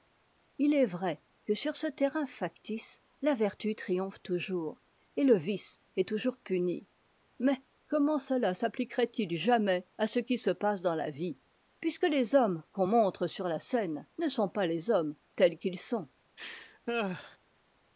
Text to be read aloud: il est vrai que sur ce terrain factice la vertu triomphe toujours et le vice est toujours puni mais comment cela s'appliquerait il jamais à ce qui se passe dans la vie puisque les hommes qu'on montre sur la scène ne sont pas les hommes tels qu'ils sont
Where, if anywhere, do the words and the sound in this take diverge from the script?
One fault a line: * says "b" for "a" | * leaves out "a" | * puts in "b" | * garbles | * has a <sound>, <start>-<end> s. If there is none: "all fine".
* has a laugh, 16.4-17.4 s